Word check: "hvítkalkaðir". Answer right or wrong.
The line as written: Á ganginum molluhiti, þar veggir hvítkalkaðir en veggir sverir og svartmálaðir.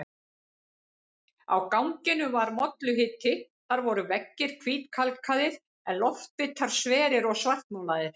right